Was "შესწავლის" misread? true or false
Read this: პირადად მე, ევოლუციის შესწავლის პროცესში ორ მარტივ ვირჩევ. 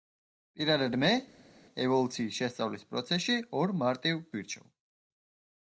false